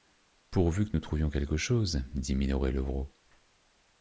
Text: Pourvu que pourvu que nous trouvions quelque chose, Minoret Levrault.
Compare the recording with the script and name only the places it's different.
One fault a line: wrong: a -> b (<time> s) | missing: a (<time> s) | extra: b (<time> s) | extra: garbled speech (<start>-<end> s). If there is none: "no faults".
missing: pourvu que (1.0 s)
extra: dit (2.1 s)